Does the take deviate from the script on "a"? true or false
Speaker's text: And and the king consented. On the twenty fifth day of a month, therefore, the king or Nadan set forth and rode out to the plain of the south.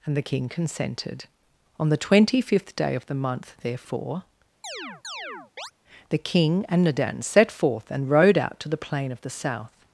true